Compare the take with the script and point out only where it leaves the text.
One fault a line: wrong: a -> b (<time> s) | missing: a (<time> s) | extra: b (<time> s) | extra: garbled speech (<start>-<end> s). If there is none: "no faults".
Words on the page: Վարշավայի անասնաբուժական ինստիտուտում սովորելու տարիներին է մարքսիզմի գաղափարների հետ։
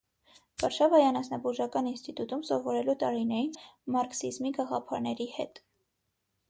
no faults